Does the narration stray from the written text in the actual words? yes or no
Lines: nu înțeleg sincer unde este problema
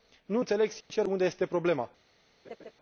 no